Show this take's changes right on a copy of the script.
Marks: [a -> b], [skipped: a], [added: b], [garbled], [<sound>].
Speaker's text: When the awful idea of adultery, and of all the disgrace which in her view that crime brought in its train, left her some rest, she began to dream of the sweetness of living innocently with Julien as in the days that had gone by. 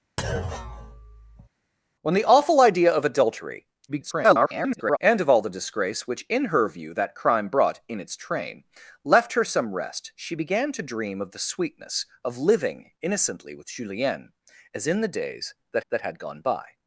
[thud] When the awful idea of adultery, [garbled] and of all the disgrace which in her view that crime brought in its train, left her some rest, she began to dream of the sweetness of living innocently with Julien as in the days that [added: that] had gone by.